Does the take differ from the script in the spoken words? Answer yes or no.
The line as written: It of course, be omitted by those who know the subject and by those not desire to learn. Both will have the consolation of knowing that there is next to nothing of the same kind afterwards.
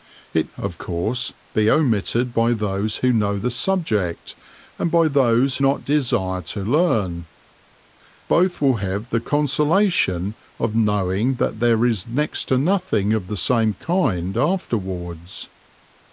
no